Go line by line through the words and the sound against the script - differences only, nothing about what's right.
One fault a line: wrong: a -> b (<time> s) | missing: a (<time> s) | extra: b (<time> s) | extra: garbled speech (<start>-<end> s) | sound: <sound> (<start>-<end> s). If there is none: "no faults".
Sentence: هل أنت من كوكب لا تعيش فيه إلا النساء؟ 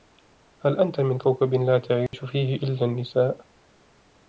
sound: dropout (2.1-2.1 s)